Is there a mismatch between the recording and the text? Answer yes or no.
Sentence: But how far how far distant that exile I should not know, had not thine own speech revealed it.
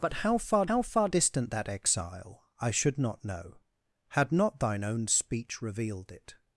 no